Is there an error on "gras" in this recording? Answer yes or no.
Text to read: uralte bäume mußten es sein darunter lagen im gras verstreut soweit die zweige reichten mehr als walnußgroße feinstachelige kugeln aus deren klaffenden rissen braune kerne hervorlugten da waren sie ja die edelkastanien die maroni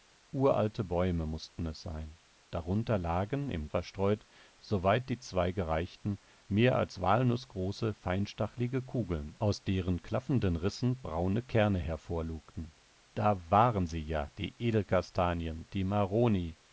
yes